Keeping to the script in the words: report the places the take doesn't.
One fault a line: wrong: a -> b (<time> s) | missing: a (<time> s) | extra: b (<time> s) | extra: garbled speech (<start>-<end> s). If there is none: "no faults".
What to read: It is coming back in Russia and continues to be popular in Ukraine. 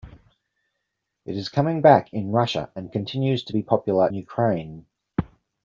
missing: in (4.1 s)